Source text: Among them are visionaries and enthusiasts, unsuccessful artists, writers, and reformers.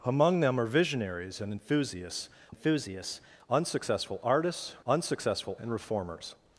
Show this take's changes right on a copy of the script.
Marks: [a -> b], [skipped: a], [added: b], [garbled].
Among them are visionaries and enthusiasts, [added: enthusiasts] unsuccessful artists, [writers, -> unsuccessful] and reformers.